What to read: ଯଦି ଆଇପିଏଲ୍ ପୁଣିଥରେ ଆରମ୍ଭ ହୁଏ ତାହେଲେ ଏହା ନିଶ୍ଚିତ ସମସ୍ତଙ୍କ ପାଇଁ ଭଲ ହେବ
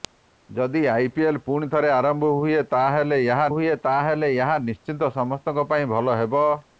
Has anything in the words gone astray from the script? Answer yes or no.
yes